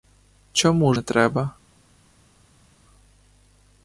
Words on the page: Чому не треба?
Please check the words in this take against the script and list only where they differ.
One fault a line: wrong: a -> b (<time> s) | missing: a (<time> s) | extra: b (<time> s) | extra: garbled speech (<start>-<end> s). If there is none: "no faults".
no faults